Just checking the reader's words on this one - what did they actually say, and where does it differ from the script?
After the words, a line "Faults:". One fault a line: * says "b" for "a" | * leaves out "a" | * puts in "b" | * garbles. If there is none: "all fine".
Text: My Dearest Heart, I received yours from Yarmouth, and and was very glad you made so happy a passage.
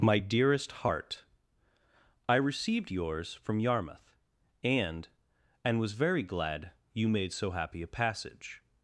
My Dearest Heart, I received yours from Yarmouth, and and was very glad you made so happy a passage.
Faults:
all fine